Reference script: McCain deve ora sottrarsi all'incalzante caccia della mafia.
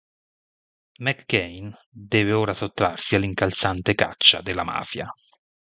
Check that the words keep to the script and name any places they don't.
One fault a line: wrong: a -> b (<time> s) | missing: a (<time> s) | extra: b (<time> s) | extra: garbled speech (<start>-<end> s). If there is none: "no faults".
no faults